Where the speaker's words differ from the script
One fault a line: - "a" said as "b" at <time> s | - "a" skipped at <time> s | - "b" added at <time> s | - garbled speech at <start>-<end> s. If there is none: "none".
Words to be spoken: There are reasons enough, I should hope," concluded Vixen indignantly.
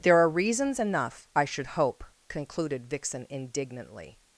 none